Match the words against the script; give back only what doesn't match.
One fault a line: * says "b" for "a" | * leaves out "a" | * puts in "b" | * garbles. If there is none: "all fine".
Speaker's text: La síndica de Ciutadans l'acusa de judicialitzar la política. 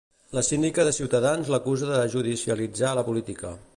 all fine